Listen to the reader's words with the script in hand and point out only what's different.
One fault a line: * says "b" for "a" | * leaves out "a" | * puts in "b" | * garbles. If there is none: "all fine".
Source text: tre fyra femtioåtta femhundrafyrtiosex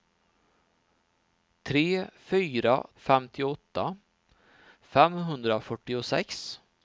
all fine